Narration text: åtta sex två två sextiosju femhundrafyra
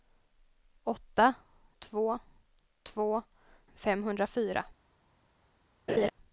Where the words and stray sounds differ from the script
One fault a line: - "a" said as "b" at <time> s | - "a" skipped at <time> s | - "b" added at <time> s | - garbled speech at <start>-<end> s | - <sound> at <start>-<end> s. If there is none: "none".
- "sex" skipped at 1.3 s
- "sextiosju" skipped at 3.2 s
- laugh at 5.9-6.1 s